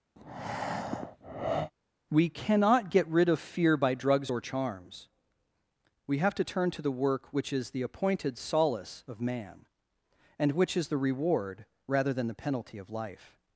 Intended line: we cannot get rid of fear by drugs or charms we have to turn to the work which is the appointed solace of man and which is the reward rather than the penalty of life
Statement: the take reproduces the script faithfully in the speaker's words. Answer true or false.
true